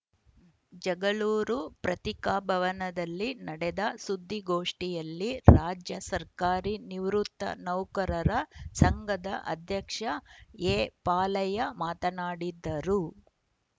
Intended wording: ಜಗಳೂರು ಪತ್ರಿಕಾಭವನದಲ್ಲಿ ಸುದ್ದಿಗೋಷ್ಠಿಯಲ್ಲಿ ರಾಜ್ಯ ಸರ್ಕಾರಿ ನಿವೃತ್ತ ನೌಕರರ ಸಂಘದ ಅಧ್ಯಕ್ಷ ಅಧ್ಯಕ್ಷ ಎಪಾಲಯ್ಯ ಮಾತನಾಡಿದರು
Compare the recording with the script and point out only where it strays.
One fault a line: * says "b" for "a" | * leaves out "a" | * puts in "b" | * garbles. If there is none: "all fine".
* puts in "ನಡೆದ"
* leaves out "ಅಧ್ಯಕ್ಷ"